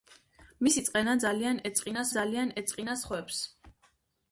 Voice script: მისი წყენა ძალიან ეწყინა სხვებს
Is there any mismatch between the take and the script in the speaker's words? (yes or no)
yes